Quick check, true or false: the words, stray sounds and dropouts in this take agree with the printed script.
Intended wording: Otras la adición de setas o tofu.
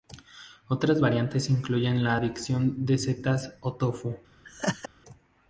false